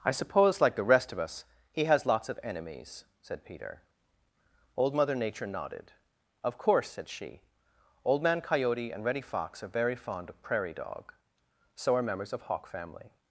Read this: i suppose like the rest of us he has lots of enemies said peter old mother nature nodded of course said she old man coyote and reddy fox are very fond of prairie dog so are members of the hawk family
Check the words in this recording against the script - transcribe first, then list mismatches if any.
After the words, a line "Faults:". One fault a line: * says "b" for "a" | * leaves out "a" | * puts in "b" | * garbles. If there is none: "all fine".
i suppose like the rest of us he has lots of enemies said peter old mother nature nodded of course said she old man coyote and reddy fox are very fond of prairie dog so are members of hawk family
Faults:
* leaves out "the"